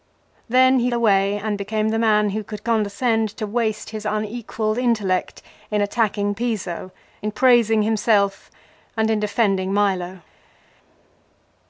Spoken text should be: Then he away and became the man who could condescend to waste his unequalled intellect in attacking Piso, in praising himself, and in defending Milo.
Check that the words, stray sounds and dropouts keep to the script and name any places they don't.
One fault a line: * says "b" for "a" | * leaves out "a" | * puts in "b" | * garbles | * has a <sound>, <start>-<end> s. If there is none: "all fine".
all fine